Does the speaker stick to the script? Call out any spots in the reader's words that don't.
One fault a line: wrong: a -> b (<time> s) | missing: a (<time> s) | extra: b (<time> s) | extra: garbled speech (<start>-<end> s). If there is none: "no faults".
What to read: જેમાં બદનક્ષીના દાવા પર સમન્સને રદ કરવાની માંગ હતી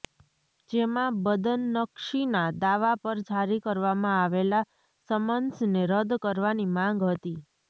extra: જારી કરવામાં આવેલા (3.3 s)